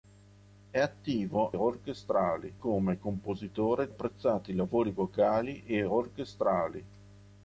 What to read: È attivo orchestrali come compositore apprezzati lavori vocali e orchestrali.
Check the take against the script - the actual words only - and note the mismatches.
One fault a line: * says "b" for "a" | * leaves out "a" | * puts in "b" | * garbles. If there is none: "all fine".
all fine